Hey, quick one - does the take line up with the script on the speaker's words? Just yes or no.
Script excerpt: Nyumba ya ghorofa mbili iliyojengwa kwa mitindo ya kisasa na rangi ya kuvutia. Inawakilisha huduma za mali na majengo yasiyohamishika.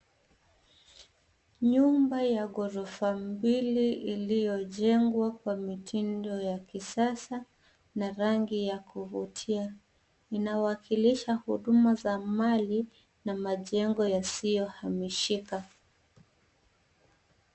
yes